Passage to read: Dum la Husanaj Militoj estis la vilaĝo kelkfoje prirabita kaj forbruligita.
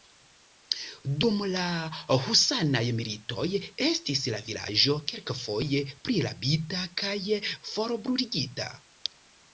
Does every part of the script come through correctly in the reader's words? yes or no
yes